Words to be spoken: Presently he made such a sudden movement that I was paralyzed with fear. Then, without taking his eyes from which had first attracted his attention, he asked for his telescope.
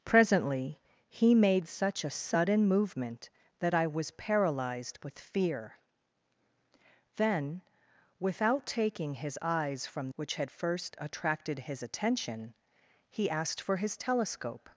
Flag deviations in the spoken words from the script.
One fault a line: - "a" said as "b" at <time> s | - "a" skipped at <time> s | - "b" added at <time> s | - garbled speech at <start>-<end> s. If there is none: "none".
none